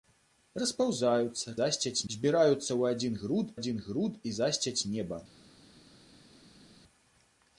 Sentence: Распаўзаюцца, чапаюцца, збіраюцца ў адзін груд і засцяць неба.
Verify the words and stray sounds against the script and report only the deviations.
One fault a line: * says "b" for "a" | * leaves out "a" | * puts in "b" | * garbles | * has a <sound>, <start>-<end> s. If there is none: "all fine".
* says "засцяць" for "чапаюцца"
* puts in "адзін груд"